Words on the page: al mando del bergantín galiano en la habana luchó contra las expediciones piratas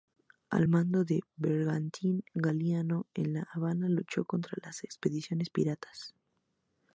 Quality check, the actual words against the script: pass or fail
pass